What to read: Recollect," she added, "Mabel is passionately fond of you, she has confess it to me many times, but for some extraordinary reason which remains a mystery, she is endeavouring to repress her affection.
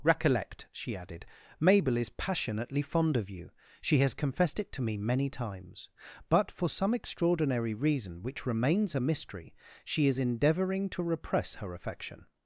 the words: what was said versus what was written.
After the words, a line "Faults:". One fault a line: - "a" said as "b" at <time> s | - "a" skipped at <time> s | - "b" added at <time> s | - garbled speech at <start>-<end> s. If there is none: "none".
Recollect," she added, "Mabel is passionately fond of you, she has confessed it to me many times, but for some extraordinary reason which remains a mystery, she is endeavouring to repress her affection.
Faults:
- "confess" said as "confessed" at 4.1 s